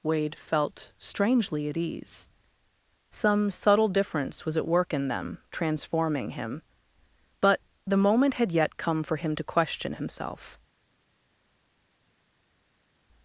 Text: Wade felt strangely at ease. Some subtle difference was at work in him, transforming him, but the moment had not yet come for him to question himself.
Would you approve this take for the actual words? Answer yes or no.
no